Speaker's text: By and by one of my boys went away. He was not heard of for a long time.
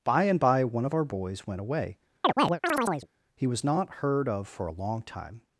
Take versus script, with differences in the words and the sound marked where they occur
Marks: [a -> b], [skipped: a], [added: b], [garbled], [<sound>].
By and by one of [my -> our] boys went away. [chirp] He was not heard of for a long time.